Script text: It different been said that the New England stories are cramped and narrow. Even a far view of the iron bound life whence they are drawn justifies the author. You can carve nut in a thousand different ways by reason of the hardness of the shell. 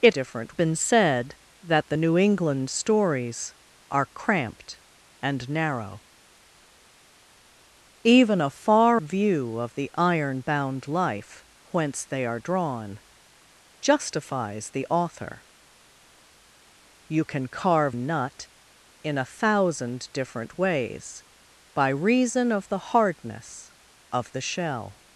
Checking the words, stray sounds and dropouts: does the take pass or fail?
pass